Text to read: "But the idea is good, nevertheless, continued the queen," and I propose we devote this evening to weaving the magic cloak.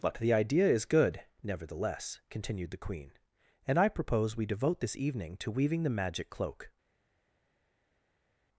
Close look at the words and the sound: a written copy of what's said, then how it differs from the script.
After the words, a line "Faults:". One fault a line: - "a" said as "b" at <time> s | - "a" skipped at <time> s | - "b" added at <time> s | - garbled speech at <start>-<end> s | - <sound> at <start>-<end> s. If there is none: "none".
"But the idea is good, nevertheless, continued the queen," and I propose we devote this evening to weaving the magic cloak.
Faults:
none